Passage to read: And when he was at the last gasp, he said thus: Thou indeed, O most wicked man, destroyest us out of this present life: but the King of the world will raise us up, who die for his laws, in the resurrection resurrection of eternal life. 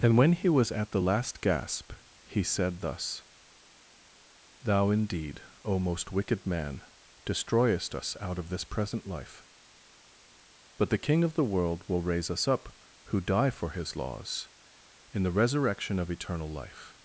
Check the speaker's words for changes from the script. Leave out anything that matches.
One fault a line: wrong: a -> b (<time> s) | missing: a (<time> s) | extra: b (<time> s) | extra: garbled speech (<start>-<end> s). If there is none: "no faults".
missing: resurrection (16.0 s)